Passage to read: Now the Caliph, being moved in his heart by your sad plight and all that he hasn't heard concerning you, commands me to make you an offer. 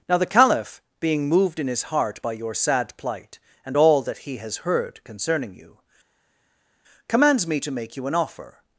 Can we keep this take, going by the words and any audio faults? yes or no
no